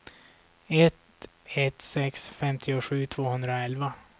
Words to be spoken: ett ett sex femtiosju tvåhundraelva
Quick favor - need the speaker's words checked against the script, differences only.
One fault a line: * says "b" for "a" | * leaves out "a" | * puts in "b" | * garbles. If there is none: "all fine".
all fine